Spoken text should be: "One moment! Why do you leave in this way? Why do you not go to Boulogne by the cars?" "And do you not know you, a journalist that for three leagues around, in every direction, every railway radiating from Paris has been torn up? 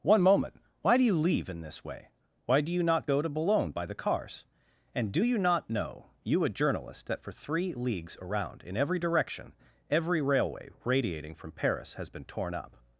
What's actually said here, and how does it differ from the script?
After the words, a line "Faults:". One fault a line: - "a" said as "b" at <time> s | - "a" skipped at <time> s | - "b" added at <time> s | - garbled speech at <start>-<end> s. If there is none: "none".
"One moment! Why do you leave in this way? Why do you not go to Boulogne by the cars?" "And do you not know you, a journalist that for three leagues around, in every direction, every railway radiating from Paris has been torn up?
Faults:
none